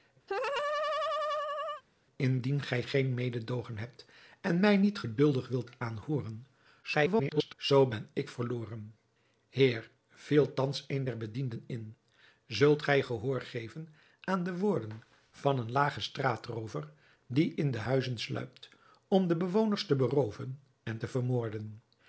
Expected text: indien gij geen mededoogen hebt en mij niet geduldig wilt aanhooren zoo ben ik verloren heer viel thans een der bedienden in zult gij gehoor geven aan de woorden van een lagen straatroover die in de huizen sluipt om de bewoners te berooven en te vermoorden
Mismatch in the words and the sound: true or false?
true